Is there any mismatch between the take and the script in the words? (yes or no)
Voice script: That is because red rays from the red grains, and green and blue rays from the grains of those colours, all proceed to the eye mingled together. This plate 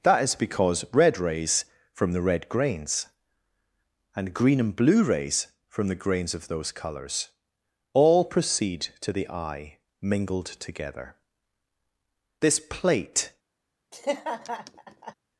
no